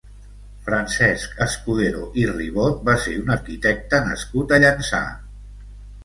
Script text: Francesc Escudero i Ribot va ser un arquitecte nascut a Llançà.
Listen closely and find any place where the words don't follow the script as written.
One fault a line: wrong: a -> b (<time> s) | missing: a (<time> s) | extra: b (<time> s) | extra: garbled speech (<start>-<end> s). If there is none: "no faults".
no faults